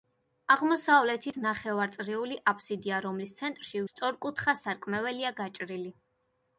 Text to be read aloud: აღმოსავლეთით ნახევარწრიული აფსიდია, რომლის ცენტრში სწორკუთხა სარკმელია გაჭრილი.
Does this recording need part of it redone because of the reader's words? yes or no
no